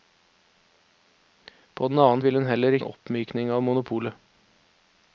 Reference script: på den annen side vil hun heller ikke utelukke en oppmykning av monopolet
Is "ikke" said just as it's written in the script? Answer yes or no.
no